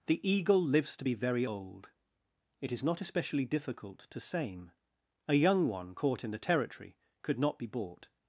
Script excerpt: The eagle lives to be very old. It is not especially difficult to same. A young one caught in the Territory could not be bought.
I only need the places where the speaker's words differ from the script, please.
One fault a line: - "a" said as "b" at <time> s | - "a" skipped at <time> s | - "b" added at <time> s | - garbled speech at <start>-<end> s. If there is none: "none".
none